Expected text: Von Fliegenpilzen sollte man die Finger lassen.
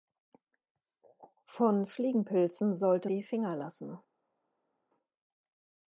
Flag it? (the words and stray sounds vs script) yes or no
yes